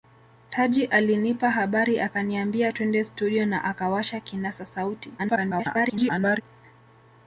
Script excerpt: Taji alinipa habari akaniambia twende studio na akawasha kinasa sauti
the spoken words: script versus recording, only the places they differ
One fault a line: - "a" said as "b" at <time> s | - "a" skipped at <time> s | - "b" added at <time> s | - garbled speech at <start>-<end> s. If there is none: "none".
- garbled speech at 5.2-6.4 s